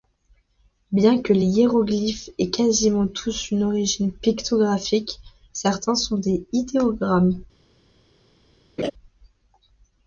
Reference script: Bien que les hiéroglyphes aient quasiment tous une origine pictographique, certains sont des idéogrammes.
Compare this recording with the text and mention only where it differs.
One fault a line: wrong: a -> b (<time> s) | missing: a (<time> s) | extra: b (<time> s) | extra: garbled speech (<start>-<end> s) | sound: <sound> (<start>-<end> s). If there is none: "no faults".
sound: laugh (8.8-8.9 s)